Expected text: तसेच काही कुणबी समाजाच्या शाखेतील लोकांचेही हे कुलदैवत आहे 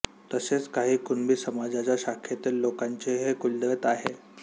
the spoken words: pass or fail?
pass